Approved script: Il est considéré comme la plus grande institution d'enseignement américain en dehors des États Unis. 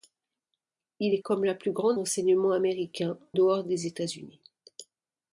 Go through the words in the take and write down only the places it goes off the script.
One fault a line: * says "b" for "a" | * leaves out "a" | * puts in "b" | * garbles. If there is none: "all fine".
* leaves out "considéré"
* leaves out "institution"
* leaves out "en"